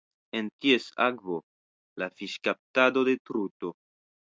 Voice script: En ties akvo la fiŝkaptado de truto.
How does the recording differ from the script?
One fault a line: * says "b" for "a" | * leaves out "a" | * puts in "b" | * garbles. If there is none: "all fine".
all fine